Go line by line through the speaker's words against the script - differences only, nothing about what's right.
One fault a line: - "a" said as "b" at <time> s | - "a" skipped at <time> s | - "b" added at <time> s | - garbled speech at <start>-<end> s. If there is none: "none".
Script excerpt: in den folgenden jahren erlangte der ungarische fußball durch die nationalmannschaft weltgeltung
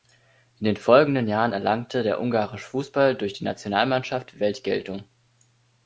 none